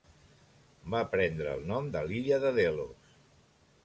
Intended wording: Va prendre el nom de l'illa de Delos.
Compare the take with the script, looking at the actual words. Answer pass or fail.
pass